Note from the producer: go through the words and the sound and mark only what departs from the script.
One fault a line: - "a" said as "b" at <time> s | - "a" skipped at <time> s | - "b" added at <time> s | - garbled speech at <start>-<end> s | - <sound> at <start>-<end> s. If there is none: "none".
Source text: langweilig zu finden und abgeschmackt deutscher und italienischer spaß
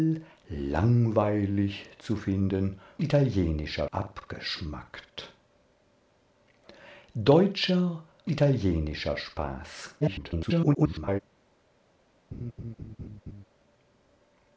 - "und" said as "italienischer" at 3.0 s
- "und" skipped at 8.0 s
- garbled speech at 10.0-11.2 s
- laugh at 12.3-13.4 s